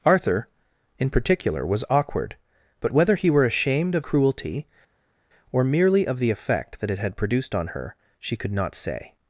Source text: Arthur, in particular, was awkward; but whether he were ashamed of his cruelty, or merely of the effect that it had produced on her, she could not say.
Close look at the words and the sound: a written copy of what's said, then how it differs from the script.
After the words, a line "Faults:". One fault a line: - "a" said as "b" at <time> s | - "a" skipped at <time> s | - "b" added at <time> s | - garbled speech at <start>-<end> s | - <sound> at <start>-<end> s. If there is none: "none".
Arthur, in particular, was awkward; but whether he were ashamed of cruelty, or merely of the effect that it had produced on her, she could not say.
Faults:
- "his" skipped at 4.0 s